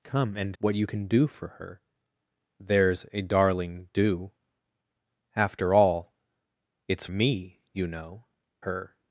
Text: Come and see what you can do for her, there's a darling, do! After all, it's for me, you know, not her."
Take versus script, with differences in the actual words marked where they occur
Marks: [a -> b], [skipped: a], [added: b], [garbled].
Come and [skipped: see] what you can do for her, there's a darling, do! After all, it's [skipped: for] me, you know, [skipped: not] her."